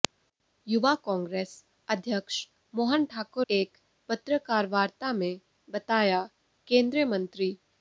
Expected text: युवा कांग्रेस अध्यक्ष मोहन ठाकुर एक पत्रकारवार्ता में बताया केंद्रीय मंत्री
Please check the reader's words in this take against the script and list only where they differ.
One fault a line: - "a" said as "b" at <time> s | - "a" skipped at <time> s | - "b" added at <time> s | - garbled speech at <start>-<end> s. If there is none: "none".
none